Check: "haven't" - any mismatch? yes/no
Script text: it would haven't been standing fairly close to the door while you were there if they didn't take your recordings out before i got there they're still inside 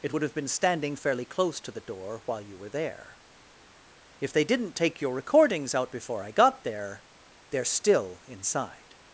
yes